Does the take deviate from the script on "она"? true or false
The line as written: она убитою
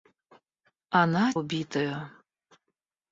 false